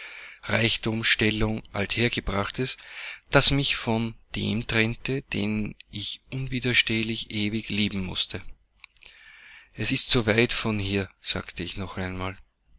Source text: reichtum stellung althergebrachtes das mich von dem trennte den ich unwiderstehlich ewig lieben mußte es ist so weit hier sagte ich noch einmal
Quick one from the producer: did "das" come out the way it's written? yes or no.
yes